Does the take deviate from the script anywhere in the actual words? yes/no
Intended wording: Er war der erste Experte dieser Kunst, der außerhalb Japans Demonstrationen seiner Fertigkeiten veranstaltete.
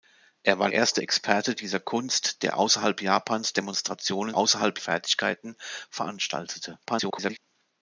yes